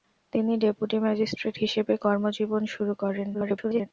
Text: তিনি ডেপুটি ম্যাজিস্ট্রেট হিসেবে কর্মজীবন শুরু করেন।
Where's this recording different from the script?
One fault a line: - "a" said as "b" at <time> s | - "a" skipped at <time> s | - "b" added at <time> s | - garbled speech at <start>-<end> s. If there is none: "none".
- garbled speech at 3.3-3.9 s